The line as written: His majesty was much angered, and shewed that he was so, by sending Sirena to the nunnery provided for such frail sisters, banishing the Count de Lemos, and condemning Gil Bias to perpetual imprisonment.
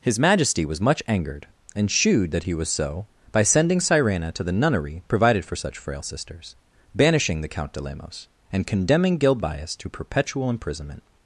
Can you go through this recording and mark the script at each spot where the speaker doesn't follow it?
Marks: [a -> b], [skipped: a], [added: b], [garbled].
His majesty was much angered, and shewed that he was so, by sending Sirena to the nunnery provided for such frail sisters, banishing the Count de Lemos, and condemning Gil Bias to perpetual imprisonment.